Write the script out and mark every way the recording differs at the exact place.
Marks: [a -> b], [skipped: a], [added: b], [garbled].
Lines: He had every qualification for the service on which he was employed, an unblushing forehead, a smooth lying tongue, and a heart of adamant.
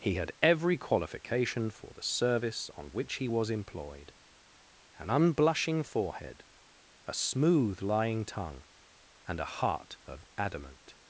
He had every qualification for the service on which he was employed, an unblushing forehead, a smooth lying tongue, and a heart of adamant.